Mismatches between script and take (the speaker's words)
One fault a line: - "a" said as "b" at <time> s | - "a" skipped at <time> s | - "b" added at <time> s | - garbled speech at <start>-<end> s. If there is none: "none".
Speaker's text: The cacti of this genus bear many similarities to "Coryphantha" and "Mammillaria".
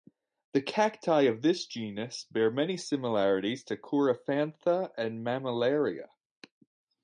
none